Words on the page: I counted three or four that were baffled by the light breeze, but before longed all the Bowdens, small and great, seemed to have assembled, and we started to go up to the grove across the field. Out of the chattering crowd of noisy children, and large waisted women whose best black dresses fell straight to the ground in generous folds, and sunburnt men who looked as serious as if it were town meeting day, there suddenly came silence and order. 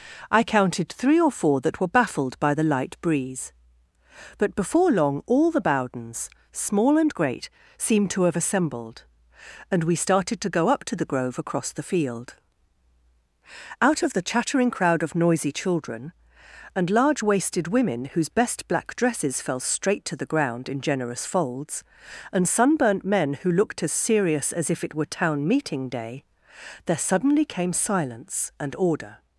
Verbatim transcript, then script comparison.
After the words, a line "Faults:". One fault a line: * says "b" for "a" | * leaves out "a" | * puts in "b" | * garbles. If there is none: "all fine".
I counted three or four that were baffled by the light breeze, but before long all the Bowdens, small and great, seemed to have assembled, and we started to go up to the grove across the field. Out of the chattering crowd of noisy children, and large waisted women whose best black dresses fell straight to the ground in generous folds, and sunburnt men who looked as serious as if it were town meeting day, there suddenly came silence and order.
Faults:
* says "long" for "longed"